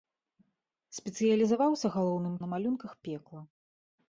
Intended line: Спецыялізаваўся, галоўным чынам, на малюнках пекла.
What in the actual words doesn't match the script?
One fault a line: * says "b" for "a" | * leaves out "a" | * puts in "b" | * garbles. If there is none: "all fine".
* leaves out "чынам"